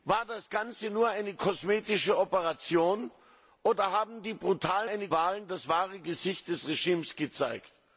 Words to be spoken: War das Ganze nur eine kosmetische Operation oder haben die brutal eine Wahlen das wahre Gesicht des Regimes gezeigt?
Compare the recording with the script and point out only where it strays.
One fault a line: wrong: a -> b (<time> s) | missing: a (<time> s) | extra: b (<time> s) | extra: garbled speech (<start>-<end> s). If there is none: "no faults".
no faults